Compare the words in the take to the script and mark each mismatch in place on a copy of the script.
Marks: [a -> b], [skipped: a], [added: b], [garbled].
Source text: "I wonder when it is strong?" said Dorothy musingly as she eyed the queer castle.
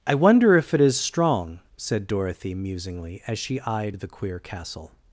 "I wonder [when -> if] it is strong?" said Dorothy musingly as she eyed the queer castle.